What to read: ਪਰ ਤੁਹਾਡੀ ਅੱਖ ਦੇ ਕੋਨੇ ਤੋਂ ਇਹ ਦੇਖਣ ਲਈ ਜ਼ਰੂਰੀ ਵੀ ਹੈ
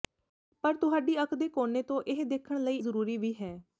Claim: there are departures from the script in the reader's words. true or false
false